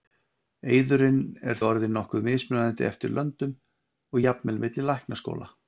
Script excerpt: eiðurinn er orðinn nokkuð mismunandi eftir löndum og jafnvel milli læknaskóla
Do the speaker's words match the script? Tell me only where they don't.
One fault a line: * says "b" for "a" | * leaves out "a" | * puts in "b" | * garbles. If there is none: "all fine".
all fine